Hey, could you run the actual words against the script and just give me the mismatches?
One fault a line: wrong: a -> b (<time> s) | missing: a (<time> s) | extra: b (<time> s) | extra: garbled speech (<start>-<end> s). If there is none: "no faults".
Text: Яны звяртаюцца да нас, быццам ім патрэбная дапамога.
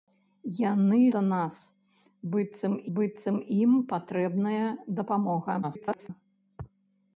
missing: звяртаюцца (1.0 s)
extra: быццам (3.0 s)
extra: garbled speech (5.6-6.1 s)